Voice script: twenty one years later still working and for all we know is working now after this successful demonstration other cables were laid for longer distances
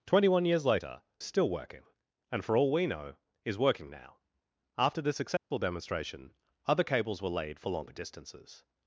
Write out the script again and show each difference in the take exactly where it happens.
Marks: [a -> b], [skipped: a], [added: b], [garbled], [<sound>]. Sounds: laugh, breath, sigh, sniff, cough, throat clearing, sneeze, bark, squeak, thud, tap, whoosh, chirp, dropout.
twenty one years later still working and for all we know is working now after this successful [dropout] demonstration other cables were laid for longer distances